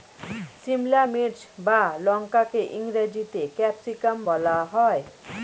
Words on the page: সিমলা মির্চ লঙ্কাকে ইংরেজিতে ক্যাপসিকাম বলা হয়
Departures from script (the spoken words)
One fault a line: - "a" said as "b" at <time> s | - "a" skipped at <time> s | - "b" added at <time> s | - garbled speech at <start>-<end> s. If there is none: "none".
- "বা" added at 1.6 s